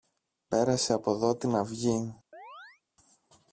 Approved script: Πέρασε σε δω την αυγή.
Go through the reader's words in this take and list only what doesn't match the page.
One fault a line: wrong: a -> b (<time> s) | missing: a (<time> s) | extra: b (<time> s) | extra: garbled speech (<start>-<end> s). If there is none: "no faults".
wrong: σε -> από (0.9 s)